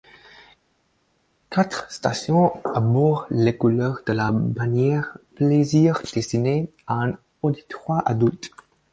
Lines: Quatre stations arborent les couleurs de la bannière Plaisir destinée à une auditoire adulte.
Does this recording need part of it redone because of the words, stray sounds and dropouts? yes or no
yes